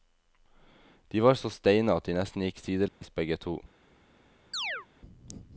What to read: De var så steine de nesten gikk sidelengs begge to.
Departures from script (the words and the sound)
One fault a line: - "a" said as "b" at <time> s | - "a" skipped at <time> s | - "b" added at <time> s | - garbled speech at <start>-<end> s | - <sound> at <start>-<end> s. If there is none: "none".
- "at" added at 1.9 s
- dropout at 2.9-3.0 s
- chirp at 4.5-4.9 s